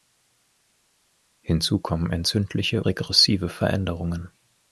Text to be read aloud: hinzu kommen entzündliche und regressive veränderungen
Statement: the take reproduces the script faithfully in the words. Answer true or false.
false